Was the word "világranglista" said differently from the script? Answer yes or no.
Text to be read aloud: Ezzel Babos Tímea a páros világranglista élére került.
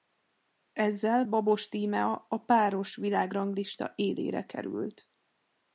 no